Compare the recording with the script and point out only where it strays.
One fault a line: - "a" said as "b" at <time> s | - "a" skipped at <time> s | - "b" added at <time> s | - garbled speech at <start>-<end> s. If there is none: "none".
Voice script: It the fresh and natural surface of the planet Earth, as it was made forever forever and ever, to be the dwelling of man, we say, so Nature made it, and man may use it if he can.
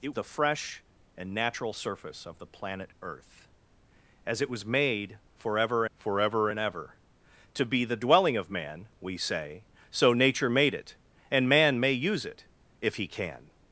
none